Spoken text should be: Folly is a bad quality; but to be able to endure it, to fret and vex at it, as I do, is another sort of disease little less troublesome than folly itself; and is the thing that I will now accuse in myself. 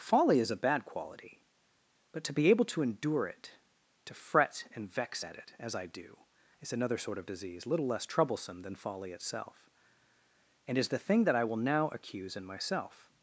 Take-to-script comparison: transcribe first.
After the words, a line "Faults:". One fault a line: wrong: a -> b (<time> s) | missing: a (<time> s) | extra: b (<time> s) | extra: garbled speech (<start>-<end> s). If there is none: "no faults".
Folly is a bad quality; but to be able to endure it, to fret and vex at it, as I do, is another sort of disease little less troublesome than folly itself; and is the thing that I will now accuse in myself.
Faults:
no faults